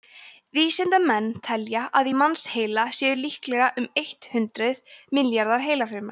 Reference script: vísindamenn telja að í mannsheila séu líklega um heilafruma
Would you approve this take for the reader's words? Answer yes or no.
no